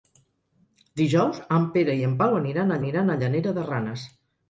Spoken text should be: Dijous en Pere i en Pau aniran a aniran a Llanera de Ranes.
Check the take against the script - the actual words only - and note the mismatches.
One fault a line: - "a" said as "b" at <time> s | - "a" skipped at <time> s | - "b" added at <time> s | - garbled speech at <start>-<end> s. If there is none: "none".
none